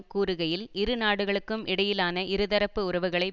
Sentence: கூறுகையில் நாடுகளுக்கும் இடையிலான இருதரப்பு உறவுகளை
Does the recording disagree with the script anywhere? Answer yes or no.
yes